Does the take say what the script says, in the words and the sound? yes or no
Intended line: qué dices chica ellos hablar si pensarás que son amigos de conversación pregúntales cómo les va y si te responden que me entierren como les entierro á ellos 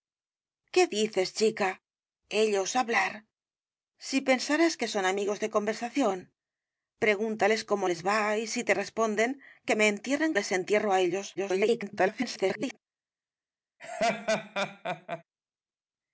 no